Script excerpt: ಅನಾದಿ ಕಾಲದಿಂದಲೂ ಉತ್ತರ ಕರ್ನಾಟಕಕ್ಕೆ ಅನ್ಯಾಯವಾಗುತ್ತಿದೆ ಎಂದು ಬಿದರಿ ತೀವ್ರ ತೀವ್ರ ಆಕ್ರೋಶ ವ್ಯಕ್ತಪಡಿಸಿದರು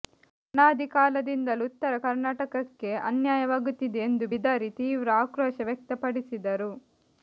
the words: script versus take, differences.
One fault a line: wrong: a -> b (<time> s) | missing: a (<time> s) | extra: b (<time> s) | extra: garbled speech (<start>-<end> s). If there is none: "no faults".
missing: ತೀವ್ರ (5.1 s)